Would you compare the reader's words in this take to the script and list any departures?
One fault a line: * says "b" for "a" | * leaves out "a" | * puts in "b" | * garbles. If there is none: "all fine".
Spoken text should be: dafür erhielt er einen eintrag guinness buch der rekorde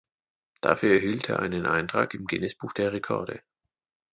* puts in "im"